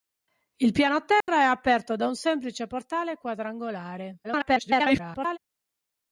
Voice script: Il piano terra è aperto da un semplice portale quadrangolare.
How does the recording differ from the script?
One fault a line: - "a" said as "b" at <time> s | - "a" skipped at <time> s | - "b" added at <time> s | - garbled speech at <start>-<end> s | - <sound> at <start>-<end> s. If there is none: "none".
- dropout at 1.2-1.3 s
- garbled speech at 4.2-5.4 s